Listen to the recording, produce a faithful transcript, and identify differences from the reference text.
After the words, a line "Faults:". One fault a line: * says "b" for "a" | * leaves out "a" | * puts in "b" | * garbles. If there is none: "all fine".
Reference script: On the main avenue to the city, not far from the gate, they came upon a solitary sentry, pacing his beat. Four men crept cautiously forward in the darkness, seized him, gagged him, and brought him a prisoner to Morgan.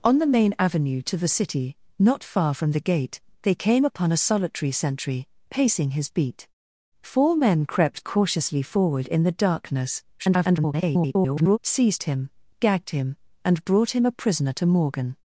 On the main avenue to the city, not far from the gate, they came upon a solitary sentry, pacing his beat. Four men crept cautiously forward in the darkness, [garbled] seized him, gagged him, and brought him a prisoner to Morgan.
Faults:
* garbles